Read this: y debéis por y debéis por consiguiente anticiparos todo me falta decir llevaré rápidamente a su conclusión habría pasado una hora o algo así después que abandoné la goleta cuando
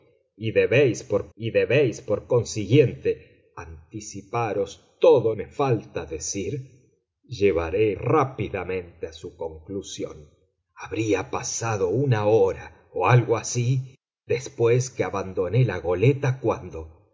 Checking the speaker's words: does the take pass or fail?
pass